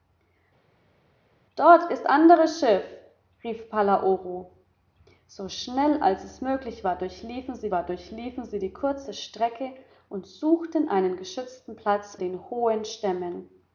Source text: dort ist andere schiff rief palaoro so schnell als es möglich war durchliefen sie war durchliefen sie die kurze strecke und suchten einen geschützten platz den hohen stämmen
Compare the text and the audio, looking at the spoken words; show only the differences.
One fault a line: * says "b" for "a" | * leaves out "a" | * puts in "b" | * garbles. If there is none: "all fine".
all fine